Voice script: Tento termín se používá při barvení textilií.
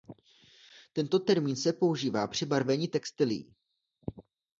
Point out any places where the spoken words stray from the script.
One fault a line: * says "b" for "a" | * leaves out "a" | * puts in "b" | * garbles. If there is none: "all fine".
all fine